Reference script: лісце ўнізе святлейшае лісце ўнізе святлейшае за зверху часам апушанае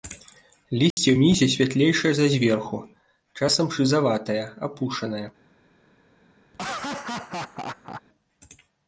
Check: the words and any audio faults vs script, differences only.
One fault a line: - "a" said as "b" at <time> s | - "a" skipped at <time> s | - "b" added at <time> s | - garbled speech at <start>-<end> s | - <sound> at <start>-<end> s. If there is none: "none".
- dropout at 0.9-1.0 s
- "лісце ўнізе святлейшае" skipped at 2.1 s
- "шызаватае" added at 3.8 s
- laugh at 6.5-8.0 s